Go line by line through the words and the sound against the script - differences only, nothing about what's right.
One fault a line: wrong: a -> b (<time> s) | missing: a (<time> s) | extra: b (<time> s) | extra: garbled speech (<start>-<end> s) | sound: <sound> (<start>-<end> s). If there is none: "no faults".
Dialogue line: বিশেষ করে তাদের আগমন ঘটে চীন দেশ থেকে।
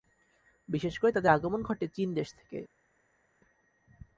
no faults